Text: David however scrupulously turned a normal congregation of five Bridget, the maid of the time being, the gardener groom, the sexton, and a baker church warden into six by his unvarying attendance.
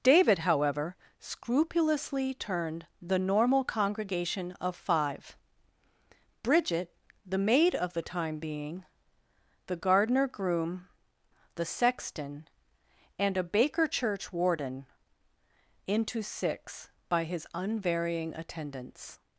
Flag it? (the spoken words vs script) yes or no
yes